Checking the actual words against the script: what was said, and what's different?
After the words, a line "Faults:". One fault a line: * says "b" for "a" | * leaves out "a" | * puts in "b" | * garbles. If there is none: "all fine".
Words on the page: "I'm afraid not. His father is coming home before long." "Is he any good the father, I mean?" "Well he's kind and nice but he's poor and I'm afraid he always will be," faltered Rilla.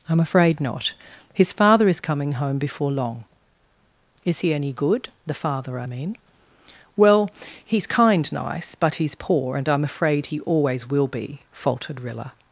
"I'm afraid not. His father is coming home before long." "Is he any good the father, I mean?" "Well he's kind nice but he's poor and I'm afraid he always will be," faltered Rilla.
Faults:
* leaves out "and"